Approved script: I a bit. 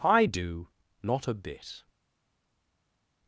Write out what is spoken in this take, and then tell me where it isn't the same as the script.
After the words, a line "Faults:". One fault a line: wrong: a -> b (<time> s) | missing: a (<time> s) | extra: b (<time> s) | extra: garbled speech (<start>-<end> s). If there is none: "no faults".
I do not a bit.
Faults:
extra: do not (0.2 s)